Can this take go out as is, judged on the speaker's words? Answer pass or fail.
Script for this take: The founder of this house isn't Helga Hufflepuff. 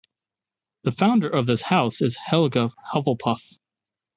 fail